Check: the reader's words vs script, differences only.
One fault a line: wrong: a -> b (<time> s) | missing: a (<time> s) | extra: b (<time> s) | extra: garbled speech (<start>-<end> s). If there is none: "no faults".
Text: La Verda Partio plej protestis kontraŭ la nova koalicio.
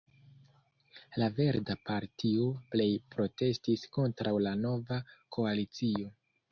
no faults